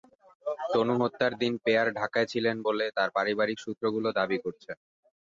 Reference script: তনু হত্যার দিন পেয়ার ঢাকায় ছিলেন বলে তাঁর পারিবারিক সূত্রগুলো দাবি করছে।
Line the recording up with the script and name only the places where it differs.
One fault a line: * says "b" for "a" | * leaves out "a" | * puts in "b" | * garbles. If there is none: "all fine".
all fine